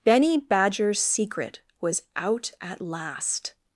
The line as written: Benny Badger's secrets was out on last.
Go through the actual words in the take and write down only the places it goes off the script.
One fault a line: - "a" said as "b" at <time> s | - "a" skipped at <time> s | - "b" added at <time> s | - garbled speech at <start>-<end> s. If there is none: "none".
- "secrets" said as "secret" at 1.0 s
- "on" said as "at" at 2.6 s